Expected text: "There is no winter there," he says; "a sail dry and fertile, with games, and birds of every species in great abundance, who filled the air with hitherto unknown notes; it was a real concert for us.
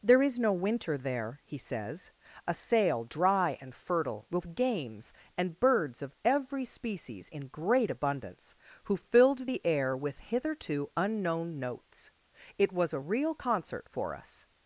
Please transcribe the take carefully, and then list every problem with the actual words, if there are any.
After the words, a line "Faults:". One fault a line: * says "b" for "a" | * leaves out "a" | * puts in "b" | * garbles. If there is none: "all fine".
"There is no winter there," he says; "a sail dry and fertile, with games, and birds of every species in great abundance, who filled the air with hitherto unknown notes; it was a real concert for us.
Faults:
all fine